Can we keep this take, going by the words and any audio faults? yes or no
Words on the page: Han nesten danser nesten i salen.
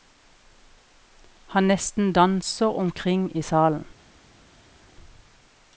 no